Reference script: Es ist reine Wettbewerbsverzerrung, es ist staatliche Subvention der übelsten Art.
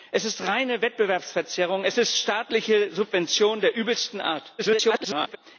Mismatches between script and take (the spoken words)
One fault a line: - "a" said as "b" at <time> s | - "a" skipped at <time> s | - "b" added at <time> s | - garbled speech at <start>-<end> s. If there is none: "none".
- garbled speech at 4.6-5.4 s